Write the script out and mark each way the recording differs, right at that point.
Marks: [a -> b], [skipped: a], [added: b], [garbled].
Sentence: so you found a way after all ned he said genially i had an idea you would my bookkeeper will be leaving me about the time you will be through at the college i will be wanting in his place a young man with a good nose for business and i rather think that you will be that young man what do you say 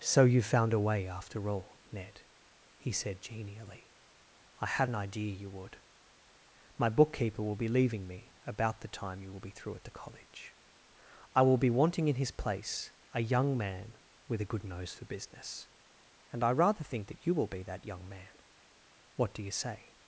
so you found a way after all ned he said genially i had an idea you would my bookkeeper will be leaving me about the time you will be through at the college i will be wanting in his place a young man with a good nose for business and i rather think that you will be that young man what do you say